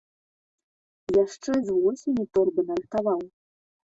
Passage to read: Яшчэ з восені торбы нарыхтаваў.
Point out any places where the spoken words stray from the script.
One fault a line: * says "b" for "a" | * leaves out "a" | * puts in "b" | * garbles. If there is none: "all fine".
all fine